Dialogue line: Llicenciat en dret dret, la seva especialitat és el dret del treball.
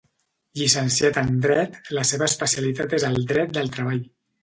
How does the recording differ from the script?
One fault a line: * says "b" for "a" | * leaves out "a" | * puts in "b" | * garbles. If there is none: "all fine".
* leaves out "dret"